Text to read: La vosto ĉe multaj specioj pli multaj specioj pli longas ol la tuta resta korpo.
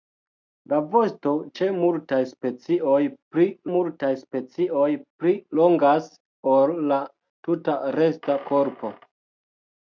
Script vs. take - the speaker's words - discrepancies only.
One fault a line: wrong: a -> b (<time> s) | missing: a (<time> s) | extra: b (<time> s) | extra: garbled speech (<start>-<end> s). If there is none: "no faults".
no faults